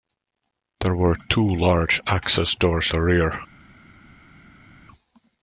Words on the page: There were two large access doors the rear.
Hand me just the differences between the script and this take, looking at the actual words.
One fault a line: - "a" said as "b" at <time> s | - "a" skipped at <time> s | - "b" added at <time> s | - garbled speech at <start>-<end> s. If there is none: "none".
none